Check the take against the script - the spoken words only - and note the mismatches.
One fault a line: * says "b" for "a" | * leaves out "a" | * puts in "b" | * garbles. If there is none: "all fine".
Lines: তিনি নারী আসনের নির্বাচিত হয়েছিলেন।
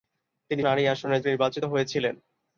all fine